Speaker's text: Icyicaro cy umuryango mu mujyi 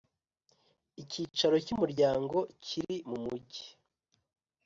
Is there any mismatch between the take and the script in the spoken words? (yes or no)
yes